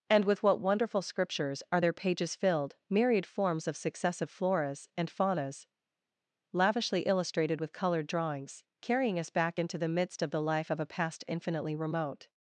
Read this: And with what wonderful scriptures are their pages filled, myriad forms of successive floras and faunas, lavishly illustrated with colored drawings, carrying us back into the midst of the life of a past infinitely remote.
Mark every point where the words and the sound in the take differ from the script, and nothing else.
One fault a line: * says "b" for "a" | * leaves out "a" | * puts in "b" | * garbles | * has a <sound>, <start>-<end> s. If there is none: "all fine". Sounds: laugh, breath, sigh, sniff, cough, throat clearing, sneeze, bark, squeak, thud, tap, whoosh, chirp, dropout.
all fine